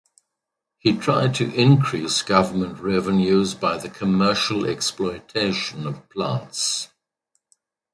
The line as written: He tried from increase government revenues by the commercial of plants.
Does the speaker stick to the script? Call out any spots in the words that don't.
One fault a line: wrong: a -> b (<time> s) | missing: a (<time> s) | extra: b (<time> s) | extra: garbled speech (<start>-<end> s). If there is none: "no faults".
wrong: from -> to (1.4 s)
extra: exploitation (4.7 s)